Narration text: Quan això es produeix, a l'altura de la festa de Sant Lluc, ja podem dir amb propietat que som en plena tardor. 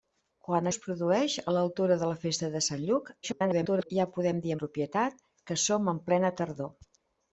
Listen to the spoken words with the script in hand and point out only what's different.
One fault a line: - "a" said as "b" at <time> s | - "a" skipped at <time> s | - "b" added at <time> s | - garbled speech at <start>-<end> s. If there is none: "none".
- "això" skipped at 0.7 s
- garbled speech at 3.2-3.9 s
- "amb" skipped at 4.6 s